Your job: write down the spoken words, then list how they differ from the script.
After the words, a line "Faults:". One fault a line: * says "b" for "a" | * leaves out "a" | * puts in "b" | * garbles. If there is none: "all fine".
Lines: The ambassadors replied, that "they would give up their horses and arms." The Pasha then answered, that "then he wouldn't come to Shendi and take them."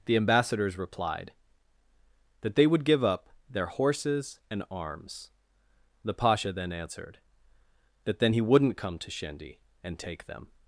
The ambassadors replied, that "they would give up their horses and arms." The Pasha then answered, that "then he wouldn't come to Shendi and take them."
Faults:
all fine